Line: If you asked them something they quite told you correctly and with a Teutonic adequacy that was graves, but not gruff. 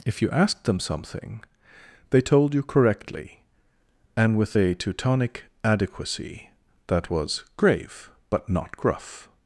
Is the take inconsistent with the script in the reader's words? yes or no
yes